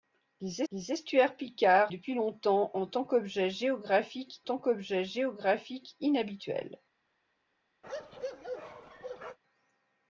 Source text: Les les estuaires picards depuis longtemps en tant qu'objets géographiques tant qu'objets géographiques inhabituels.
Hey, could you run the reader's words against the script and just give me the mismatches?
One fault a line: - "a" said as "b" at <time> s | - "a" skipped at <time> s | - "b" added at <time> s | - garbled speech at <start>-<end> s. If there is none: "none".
none